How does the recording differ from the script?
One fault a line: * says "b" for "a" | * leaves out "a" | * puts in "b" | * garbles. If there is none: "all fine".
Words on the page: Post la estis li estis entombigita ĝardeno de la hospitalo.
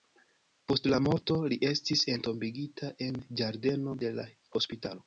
* says "morto" for "estis"
* puts in "en"